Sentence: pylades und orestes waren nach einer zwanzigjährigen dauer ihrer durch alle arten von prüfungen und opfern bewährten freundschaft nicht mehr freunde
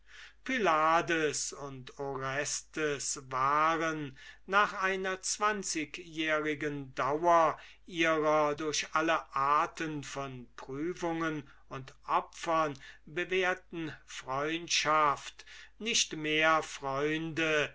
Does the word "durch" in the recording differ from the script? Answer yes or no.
no